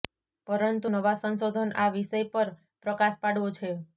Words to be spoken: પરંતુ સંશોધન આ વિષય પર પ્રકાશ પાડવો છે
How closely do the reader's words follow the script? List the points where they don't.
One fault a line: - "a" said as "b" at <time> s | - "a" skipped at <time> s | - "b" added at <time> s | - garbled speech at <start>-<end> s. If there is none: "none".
- "નવા" added at 0.9 s